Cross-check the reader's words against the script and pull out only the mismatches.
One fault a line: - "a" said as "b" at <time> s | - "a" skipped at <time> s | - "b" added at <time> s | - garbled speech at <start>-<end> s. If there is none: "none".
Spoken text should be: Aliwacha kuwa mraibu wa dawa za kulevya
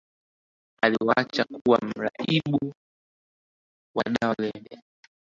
- "za" skipped at 4.3 s